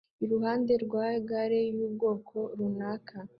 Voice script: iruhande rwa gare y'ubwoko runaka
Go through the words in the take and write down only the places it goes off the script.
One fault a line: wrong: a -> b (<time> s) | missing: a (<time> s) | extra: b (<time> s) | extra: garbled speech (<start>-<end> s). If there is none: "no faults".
no faults